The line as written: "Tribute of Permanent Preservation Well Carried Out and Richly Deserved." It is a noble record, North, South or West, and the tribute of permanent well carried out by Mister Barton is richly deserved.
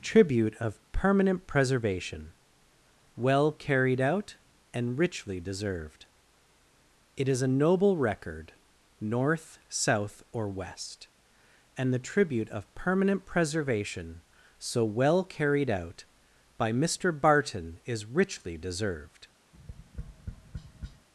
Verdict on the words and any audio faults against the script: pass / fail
fail